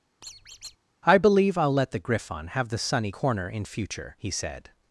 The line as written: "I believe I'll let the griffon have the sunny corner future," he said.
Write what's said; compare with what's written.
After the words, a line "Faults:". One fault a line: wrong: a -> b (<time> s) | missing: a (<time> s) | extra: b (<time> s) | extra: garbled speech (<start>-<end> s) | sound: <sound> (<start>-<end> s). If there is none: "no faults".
"I believe I'll let the griffon have the sunny corner in future," he said.
Faults:
sound: squeak (0.2-0.8 s)
extra: in (3.5 s)